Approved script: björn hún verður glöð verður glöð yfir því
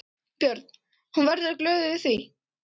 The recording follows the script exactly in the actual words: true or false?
false